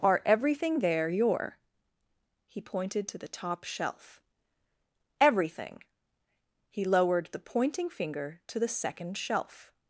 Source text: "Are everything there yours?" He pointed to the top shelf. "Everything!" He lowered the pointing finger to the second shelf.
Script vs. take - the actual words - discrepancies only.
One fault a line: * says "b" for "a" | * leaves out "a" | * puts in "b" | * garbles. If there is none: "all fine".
* says "your" for "yours"